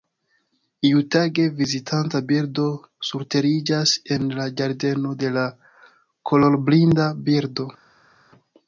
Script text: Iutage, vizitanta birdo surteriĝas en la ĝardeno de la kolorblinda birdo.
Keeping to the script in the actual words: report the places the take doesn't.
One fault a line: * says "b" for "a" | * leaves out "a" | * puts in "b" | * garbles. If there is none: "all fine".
all fine